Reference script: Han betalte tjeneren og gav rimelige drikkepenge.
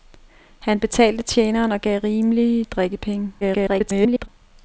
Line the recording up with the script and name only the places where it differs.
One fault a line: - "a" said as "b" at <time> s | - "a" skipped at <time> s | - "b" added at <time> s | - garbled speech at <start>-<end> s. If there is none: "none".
- garbled speech at 3.4-4.3 s